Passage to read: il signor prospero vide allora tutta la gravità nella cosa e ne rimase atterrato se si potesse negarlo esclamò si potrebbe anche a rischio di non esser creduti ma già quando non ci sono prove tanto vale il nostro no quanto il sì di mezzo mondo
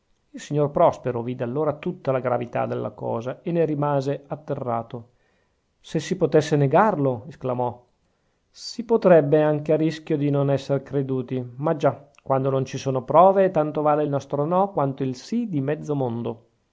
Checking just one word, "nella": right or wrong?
wrong